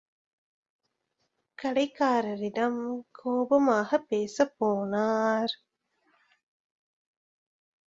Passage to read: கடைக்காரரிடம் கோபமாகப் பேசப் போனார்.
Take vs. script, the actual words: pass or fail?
pass